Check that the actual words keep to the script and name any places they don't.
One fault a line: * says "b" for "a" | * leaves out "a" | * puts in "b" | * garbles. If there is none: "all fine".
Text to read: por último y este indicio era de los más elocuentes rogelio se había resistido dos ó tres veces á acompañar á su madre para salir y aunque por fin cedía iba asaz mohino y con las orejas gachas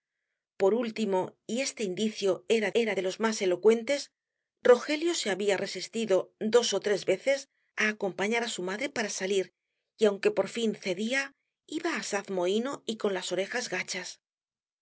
* puts in "era"